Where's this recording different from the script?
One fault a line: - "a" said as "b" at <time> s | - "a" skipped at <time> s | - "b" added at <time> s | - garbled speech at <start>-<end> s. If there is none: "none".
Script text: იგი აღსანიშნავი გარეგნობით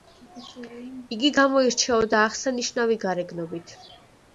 - "გამოირჩეოდა" added at 1.4 s